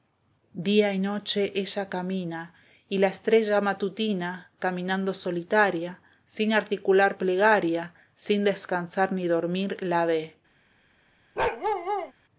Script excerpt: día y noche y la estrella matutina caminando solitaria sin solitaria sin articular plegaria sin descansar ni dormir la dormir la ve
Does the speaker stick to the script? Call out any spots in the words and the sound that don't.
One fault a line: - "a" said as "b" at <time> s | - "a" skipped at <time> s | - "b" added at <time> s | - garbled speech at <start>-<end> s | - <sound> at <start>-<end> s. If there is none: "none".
- "ella camina" added at 1.6 s
- "solitaria sin" skipped at 6.5 s
- "dormir la" skipped at 10.1 s
- bark at 11.4-12.1 s